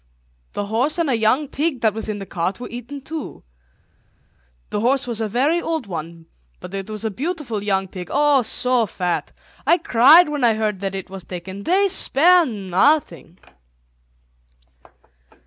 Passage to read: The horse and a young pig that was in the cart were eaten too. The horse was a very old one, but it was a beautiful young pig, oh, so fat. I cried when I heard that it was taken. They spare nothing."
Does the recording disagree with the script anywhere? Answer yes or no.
no